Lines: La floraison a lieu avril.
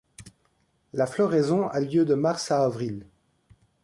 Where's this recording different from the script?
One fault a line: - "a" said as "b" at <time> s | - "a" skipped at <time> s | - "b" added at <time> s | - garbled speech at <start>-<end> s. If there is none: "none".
- "de mars à" added at 2.0 s